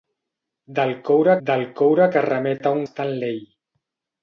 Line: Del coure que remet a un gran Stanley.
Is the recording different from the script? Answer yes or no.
yes